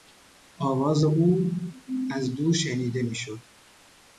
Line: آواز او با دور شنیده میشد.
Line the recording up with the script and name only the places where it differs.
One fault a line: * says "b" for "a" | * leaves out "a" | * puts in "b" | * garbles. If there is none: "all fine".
* says "از" for "با"